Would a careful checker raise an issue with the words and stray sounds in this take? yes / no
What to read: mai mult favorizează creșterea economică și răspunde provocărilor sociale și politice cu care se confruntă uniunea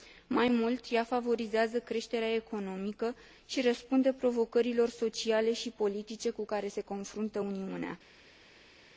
yes